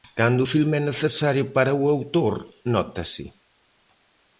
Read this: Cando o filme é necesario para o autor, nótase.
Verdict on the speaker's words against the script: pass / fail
pass